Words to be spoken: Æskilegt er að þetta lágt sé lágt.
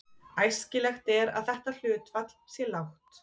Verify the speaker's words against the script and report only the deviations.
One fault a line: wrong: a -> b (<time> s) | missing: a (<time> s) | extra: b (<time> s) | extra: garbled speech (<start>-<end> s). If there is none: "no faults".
wrong: lágt -> hlutfall (1.8 s)